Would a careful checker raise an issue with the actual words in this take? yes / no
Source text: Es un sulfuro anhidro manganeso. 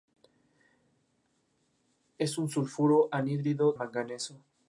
no